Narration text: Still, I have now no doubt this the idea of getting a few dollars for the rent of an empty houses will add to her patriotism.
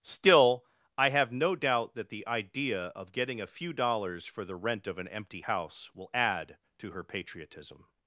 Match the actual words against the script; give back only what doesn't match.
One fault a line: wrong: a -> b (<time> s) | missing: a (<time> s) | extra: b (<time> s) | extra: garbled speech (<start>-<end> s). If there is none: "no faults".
missing: now (1.3 s)
wrong: this -> that (1.9 s)
wrong: houses -> house (5.4 s)